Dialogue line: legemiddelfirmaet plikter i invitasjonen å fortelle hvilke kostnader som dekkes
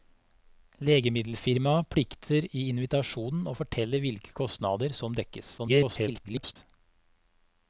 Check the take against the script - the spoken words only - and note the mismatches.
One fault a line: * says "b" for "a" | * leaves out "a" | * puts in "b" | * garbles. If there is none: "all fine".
* garbles